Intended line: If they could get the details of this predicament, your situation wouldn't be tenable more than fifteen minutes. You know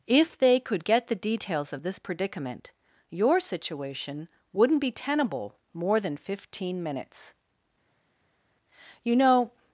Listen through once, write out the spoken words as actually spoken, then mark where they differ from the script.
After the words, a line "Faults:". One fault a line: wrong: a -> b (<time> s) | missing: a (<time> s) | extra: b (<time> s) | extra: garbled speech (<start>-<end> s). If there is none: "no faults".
If they could get the details of this predicament, your situation wouldn't be tenable more than fifteen minutes. You know
Faults:
no faults